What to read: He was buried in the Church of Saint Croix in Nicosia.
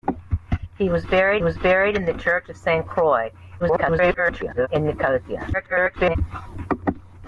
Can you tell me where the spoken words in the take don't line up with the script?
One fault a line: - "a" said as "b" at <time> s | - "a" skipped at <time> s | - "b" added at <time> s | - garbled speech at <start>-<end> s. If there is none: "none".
- "was buried" added at 1.4 s
- garbled speech at 3.6-4.7 s
- garbled speech at 5.5-6.2 s